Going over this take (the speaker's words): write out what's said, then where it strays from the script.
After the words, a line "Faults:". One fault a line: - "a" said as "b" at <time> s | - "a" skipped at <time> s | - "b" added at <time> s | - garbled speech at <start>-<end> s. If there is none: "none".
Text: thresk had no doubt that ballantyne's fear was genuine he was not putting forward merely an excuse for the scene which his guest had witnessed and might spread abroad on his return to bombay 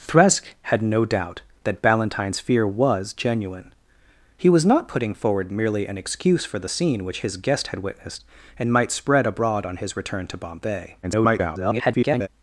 thresk had no doubt that ballantyne's fear was genuine he was not putting forward merely an excuse for the scene which his guest had witnessed and might spread abroad on his return to bombay [garbled]
Faults:
- garbled speech at 11.0-12.3 s